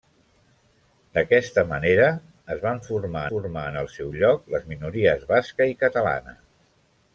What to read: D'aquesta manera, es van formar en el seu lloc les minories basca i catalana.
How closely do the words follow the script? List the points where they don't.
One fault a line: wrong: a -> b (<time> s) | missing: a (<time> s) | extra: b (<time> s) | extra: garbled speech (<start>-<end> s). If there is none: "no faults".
extra: formar (3.3 s)